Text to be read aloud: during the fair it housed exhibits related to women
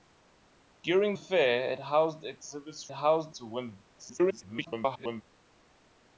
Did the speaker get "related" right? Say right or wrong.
wrong